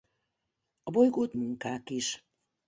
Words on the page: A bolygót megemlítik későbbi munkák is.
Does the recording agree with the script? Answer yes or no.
no